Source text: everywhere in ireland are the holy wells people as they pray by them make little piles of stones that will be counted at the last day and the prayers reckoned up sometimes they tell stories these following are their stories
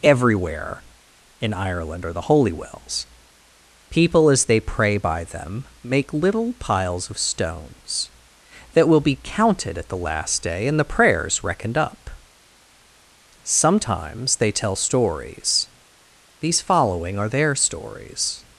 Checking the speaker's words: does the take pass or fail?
pass